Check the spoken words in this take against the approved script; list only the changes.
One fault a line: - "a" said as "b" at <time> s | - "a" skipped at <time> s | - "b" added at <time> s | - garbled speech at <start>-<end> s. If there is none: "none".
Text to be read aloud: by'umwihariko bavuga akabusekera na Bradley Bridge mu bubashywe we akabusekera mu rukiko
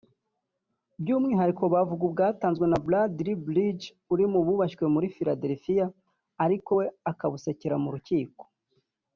- "akabusekera" said as "ubwatanzwe" at 2.1 s
- "uri" added at 4.1 s
- "muri Philadelphia ariko" added at 4.9 s